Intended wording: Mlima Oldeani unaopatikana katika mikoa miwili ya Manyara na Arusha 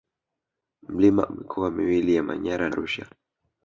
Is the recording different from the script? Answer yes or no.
yes